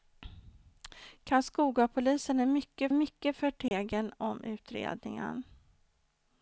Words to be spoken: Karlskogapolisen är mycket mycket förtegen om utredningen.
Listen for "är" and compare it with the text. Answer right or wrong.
right